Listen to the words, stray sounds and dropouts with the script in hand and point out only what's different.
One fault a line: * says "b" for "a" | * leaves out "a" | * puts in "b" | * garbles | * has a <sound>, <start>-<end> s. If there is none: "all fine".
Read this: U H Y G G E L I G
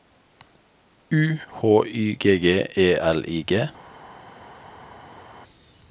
all fine